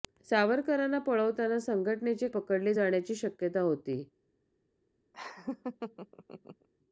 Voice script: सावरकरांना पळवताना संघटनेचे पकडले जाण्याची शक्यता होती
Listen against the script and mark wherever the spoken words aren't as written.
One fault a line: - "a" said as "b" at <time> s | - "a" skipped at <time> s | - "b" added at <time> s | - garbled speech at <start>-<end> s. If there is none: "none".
none